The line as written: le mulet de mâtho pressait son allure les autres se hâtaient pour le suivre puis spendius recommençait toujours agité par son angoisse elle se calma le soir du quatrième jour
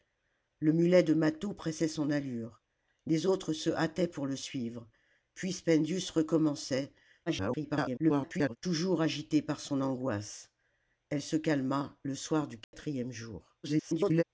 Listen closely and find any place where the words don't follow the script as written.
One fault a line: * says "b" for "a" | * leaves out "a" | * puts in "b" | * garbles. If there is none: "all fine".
* garbles
* garbles